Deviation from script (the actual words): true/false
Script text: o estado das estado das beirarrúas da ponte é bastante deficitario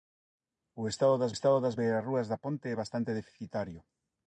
false